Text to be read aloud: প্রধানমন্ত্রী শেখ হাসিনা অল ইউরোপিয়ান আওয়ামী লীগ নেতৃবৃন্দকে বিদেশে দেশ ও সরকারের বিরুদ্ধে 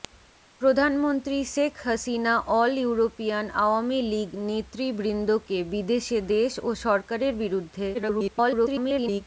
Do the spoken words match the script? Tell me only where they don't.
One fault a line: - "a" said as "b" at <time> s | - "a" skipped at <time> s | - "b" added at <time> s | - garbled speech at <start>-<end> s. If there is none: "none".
- garbled speech at 7.9-9.2 s